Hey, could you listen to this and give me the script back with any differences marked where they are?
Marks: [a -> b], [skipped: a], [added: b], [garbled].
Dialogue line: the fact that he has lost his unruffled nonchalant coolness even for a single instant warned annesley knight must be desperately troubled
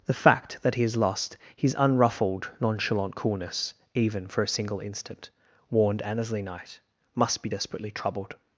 the fact that he has lost his unruffled nonchalant coolness even for a single instant warned annesley knight must be desperately troubled